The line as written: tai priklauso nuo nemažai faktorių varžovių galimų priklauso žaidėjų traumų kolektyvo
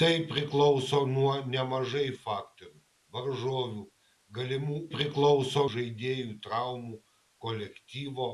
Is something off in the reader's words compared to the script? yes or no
no